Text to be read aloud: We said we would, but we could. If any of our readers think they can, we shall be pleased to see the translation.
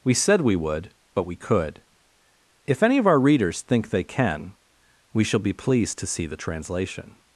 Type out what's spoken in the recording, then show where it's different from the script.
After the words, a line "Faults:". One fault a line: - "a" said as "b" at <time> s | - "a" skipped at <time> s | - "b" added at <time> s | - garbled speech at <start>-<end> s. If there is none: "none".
We said we would, but we could. If any of our readers think they can, we shall be pleased to see the translation.
Faults:
none